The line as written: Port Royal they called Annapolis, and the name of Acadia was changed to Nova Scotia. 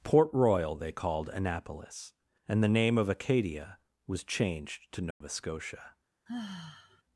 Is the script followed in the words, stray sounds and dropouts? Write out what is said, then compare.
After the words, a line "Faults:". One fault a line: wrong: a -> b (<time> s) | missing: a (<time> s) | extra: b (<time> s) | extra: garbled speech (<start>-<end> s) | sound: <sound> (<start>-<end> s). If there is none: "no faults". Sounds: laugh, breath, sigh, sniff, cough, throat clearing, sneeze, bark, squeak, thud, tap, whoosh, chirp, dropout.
Port Royal they called Annapolis, and the name of Acadia was changed to Nova Scotia.
Faults:
sound: dropout (5.1-5.2 s)
sound: sigh (6.3-7.0 s)